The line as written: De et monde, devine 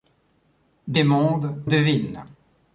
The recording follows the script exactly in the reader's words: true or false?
true